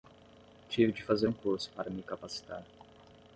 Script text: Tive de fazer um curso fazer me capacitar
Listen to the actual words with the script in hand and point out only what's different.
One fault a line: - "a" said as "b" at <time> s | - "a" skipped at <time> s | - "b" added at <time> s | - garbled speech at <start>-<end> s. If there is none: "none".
- "fazer" said as "para" at 1.7 s